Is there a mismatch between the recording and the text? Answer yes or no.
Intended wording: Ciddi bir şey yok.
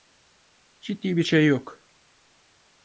no